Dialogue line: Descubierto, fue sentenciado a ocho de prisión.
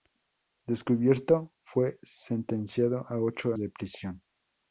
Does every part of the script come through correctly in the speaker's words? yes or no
yes